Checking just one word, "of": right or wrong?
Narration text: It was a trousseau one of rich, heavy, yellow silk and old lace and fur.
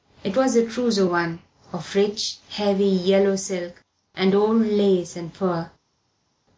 right